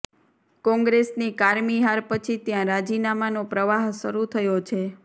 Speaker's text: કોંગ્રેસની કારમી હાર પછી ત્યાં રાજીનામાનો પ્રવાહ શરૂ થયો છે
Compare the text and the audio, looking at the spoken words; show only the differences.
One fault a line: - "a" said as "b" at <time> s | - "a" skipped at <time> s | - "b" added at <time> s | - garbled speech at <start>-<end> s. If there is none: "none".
none